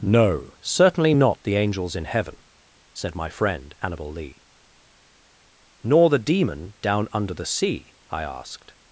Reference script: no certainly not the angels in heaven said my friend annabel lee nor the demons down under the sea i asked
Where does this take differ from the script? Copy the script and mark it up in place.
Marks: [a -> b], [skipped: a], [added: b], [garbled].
no certainly not the angels in heaven said my friend annabel lee nor the [demons -> demon] down under the sea i asked